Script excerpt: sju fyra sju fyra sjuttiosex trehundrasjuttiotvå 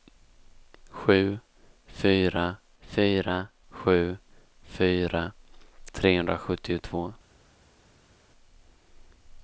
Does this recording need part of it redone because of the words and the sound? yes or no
yes